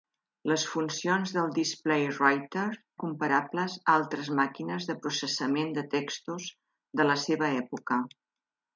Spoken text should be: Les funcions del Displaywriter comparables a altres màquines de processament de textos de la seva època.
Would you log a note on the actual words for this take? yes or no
no